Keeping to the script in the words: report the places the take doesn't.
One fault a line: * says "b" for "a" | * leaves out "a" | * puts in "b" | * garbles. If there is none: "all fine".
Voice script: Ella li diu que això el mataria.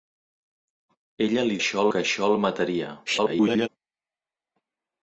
* says "això" for "diu"
* garbles